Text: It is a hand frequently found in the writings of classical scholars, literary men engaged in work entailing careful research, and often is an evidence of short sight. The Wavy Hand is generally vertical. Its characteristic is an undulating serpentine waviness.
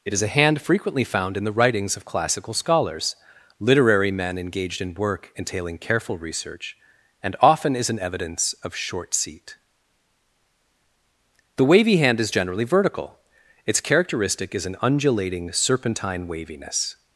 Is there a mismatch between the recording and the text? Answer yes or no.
yes